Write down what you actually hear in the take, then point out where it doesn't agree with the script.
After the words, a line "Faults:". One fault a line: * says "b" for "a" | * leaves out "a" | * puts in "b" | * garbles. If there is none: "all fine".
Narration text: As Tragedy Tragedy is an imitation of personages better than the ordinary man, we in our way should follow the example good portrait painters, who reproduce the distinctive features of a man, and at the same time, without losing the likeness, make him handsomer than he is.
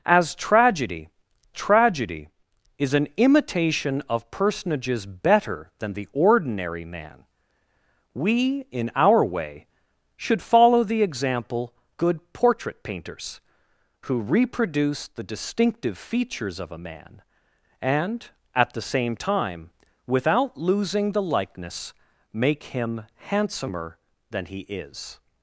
As Tragedy Tragedy is an imitation of personages better than the ordinary man, we in our way should follow the example good portrait painters, who reproduce the distinctive features of a man, and at the same time, without losing the likeness, make him handsomer than he is.
Faults:
all fine